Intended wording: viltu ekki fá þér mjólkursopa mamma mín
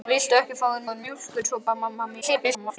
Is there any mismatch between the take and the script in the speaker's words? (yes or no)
yes